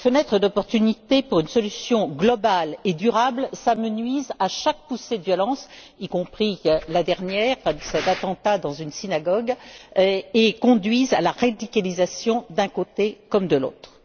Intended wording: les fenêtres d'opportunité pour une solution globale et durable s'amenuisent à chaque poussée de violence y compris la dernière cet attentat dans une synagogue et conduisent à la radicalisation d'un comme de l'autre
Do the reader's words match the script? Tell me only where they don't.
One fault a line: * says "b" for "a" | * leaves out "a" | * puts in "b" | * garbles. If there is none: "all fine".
* puts in "côté"